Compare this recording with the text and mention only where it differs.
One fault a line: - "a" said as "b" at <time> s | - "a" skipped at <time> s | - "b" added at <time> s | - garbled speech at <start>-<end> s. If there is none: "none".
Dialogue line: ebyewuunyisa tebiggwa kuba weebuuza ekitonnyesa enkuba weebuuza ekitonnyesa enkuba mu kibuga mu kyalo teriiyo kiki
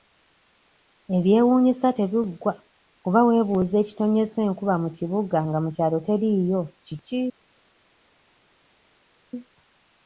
- "weebuuza ekitonnyesa enkuba" skipped at 4.7 s
- "nga" added at 5.5 s